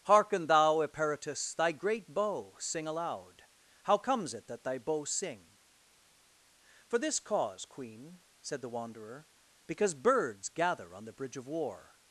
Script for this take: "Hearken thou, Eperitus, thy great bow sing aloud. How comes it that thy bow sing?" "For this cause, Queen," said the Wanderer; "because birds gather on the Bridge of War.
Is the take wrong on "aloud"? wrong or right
right